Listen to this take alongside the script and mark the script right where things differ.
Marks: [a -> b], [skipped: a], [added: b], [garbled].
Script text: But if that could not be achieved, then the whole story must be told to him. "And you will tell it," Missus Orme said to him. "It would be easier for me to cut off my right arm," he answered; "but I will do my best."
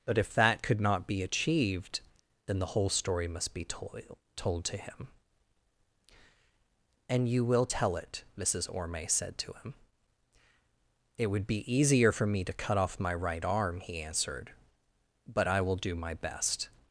But if that could not be achieved, then the whole story must be told [added: told] to him. "And you will tell it," Missus Orme said to him. "It would be easier for me to cut off my right arm," he answered; "but I will do my best."